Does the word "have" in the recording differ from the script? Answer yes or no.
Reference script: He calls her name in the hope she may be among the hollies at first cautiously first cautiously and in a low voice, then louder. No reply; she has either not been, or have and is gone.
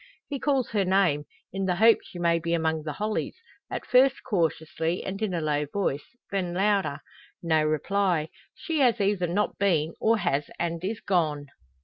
yes